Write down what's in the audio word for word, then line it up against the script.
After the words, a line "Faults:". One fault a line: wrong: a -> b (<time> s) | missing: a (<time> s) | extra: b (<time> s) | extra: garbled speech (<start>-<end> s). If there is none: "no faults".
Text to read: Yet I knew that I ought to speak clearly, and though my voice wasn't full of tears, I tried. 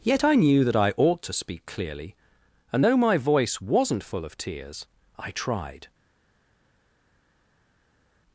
Yet I knew that I ought to speak clearly, and though my voice wasn't full of tears, I tried.
Faults:
no faults